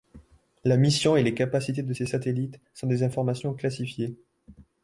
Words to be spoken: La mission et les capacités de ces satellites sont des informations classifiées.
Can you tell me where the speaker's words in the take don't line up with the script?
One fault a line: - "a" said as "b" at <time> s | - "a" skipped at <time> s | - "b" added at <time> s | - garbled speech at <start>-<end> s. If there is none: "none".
none